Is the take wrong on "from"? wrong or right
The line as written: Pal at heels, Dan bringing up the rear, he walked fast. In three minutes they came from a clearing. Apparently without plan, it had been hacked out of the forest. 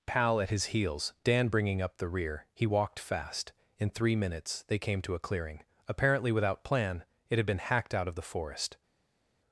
wrong